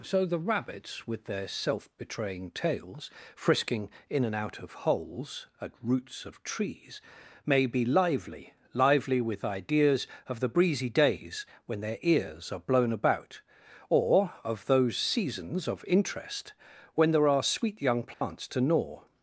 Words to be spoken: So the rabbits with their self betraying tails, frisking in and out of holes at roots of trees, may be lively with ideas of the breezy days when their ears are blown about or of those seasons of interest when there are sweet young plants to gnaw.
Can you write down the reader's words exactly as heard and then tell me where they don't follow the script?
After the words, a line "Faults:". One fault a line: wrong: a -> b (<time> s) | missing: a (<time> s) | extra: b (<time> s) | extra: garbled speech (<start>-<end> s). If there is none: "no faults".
So the rabbits with their self betraying tails, frisking in and out of holes at roots of trees, may be lively lively with ideas of the breezy days when their ears are blown about or of those seasons of interest when there are sweet young plants to gnaw.
Faults:
extra: lively (8.7 s)